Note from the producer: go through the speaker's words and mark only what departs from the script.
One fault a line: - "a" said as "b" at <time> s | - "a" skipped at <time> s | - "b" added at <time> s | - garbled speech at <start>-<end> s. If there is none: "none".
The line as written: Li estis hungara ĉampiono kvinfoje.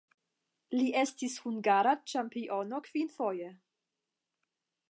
none